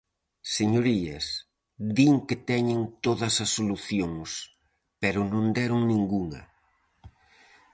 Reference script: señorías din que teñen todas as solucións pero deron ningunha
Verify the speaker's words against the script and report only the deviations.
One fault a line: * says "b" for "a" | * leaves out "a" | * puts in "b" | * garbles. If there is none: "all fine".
* puts in "non"